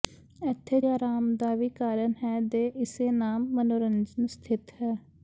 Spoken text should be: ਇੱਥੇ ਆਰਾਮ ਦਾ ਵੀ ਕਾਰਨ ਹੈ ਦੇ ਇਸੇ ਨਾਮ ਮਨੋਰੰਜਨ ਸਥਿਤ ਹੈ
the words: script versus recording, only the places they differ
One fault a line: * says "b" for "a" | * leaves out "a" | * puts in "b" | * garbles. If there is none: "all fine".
all fine